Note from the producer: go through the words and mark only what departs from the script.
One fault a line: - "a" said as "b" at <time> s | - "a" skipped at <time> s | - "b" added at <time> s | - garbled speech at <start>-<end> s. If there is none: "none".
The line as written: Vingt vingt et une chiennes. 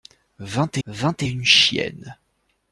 none